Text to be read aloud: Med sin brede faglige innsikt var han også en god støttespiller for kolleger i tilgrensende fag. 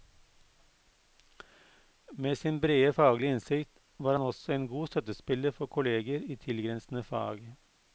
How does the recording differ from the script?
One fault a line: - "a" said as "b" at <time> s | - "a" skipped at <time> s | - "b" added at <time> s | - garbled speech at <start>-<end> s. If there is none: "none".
none